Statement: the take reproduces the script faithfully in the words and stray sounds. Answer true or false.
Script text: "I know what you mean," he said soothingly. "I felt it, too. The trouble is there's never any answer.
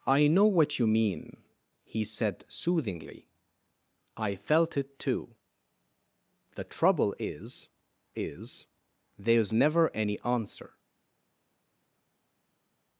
false